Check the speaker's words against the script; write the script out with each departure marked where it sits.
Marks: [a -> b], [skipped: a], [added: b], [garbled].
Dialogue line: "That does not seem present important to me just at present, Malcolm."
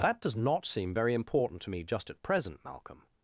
"That does not seem [present -> very] important to me just at present, Malcolm."